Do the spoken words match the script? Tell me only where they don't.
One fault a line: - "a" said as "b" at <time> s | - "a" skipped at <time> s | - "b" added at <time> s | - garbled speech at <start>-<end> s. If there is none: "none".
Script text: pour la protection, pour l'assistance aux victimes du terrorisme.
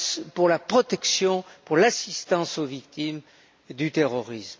none